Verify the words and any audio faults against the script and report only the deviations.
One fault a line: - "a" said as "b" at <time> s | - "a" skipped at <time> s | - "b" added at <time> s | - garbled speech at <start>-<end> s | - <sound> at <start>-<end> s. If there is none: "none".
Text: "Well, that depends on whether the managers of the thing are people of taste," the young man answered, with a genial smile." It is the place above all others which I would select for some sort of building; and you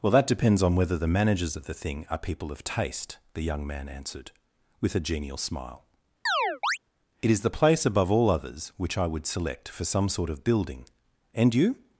- chirp at 6.3-6.8 s